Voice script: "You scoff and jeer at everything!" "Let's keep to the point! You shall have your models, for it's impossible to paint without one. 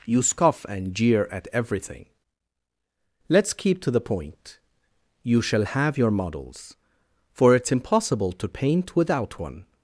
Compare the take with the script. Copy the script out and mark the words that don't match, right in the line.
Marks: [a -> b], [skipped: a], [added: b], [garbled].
"You scoff and jeer at everything!" "Let's keep to the point! You shall have your models, for it's impossible to paint without one.